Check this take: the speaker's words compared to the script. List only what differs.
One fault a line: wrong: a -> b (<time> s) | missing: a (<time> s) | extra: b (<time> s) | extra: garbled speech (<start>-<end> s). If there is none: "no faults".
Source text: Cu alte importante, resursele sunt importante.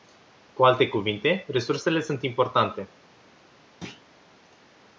wrong: importante -> cuvinte (0.9 s)